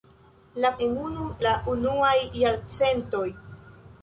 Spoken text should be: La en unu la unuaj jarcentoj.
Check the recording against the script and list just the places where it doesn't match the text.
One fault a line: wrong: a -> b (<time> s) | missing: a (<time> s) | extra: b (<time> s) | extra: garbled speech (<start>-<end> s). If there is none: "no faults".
no faults